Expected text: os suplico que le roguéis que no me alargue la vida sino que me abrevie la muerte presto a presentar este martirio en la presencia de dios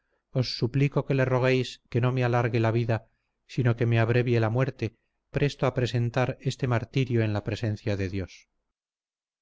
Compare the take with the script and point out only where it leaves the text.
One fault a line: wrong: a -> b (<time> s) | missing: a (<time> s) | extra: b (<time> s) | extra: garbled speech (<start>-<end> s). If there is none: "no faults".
no faults